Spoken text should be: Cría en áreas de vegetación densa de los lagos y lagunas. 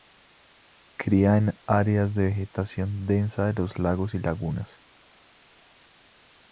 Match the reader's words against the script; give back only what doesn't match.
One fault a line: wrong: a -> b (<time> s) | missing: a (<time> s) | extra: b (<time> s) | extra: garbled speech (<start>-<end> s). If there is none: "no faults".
no faults